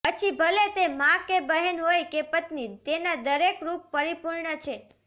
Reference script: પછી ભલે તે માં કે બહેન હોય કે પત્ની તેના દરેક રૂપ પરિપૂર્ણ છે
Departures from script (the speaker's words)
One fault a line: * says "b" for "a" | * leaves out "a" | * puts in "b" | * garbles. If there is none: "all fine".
all fine